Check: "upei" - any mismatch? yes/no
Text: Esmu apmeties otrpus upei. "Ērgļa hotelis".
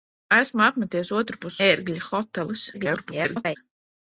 yes